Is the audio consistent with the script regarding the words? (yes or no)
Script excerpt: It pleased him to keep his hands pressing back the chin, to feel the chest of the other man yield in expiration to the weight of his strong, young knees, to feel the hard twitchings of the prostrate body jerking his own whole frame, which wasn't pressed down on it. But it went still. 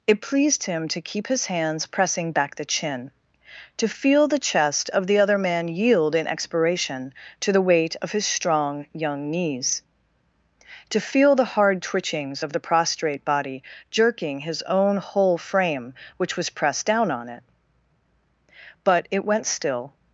no